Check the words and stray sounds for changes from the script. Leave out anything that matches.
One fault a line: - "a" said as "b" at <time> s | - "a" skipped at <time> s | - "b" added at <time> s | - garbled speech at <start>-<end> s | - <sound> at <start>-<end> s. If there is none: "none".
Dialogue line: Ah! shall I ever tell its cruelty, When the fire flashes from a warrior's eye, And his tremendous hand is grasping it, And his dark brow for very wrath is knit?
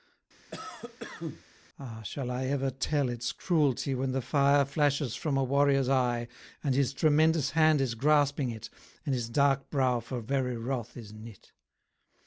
- cough at 0.5-1.4 s